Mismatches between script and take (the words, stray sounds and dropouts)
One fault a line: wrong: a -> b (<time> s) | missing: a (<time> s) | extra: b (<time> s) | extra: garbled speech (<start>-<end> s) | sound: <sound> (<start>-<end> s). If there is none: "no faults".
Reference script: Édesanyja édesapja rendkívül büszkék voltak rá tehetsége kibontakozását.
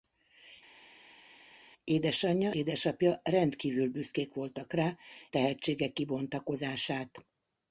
no faults